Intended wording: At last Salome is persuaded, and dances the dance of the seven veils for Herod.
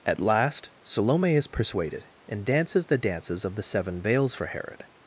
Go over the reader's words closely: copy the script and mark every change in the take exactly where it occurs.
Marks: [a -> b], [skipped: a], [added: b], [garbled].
At last Salome is persuaded, and dances the [dance -> dances] of the seven veils for Herod.